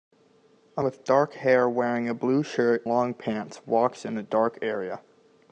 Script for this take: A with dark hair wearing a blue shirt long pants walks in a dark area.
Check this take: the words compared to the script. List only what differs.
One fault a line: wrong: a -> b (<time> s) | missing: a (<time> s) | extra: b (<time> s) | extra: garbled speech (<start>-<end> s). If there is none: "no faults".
no faults